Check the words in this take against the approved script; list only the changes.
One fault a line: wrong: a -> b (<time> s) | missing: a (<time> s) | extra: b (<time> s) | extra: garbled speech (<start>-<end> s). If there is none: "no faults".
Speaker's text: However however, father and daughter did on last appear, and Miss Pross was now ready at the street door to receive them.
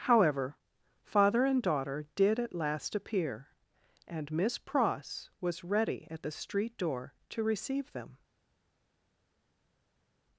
missing: however (0.6 s)
wrong: on -> at (2.4 s)
missing: now (5.6 s)